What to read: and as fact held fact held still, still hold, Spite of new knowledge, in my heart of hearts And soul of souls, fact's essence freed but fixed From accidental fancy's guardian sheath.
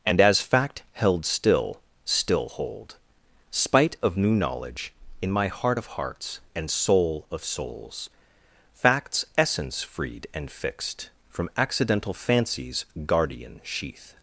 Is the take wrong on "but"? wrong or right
wrong